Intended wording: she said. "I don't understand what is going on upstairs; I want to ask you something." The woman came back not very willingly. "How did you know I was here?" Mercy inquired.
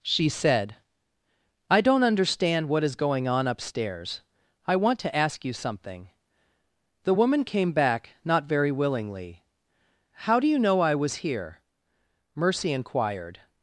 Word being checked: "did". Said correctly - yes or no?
no